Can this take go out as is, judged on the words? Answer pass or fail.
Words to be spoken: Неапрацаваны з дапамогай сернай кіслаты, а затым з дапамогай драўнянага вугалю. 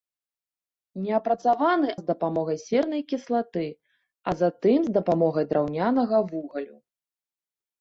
pass